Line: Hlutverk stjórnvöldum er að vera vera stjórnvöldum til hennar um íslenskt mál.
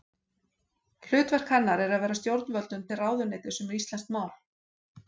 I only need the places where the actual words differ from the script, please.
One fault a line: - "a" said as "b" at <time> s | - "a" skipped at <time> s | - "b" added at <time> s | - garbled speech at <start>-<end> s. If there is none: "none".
- "stjórnvöldum" said as "hennar" at 1.6 s
- "vera" skipped at 2.2 s
- "hennar" said as "ráðuneytis" at 3.0 s